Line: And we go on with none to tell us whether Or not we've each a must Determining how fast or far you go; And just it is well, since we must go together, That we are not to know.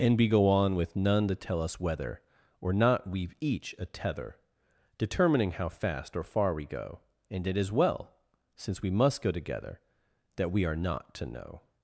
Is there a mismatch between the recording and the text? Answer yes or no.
yes